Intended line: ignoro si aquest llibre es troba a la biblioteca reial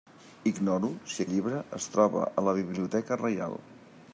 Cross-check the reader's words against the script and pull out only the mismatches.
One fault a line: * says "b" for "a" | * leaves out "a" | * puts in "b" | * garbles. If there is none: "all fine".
* leaves out "aquest"